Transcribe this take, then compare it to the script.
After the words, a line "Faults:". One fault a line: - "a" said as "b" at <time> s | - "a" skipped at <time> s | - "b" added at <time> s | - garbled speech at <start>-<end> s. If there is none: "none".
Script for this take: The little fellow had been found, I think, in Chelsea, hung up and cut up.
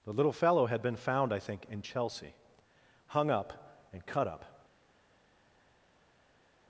The little fellow had been found, I think, in Chelsea, hung up and cut up.
Faults:
none